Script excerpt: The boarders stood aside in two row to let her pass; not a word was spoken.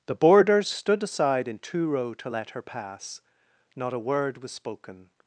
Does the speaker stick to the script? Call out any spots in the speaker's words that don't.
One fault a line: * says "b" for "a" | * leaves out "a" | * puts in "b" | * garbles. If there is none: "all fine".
all fine